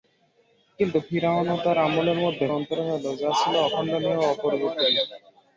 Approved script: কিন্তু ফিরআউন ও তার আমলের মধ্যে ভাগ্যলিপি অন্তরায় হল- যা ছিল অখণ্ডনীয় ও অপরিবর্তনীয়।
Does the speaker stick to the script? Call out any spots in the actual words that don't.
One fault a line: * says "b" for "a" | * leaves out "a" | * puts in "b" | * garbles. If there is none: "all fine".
* leaves out "ভাগ্যলিপি"